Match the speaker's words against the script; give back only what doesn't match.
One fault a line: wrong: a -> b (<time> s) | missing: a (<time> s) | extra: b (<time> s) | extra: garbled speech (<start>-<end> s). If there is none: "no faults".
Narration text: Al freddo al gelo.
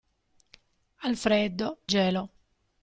missing: al (1.8 s)